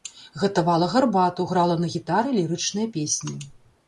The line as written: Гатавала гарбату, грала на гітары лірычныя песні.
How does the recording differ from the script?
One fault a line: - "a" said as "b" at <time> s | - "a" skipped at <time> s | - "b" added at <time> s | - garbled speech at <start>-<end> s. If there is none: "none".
none